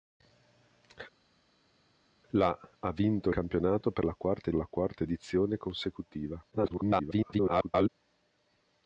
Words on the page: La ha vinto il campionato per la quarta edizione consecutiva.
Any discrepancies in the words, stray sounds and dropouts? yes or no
yes